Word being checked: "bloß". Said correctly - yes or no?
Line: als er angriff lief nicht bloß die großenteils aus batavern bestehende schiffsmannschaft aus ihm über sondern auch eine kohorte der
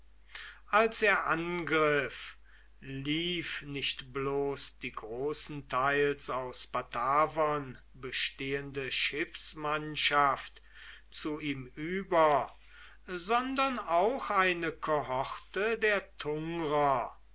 yes